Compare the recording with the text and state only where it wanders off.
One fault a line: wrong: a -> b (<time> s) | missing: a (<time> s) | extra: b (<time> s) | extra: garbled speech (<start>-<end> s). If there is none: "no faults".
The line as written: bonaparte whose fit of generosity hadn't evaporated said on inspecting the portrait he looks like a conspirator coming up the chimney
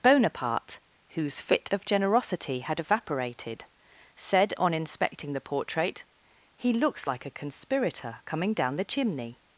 wrong: hadn't -> had (2.6 s)
wrong: up -> down (8.5 s)